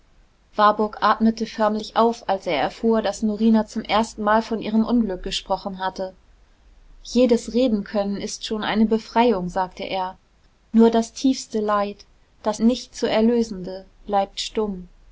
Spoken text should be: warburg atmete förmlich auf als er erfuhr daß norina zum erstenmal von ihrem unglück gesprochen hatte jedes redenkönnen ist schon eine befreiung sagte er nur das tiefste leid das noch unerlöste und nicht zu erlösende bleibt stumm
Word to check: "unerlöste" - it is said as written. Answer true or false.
false